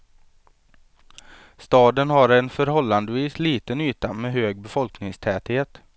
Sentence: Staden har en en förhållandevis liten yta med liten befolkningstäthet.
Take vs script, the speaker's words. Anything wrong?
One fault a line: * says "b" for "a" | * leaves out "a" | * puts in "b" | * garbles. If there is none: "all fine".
* leaves out "en"
* says "hög" for "liten"